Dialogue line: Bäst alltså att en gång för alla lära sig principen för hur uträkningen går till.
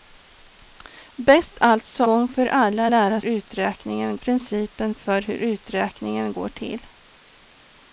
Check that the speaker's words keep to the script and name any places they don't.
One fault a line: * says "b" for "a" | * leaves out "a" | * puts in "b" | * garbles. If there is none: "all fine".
* leaves out "att en"
* says "uträkningen" for "sig"